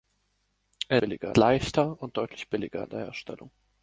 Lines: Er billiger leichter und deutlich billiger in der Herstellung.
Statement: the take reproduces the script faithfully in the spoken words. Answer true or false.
true